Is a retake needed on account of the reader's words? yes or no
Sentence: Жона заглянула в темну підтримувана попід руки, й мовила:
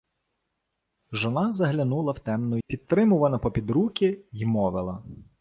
no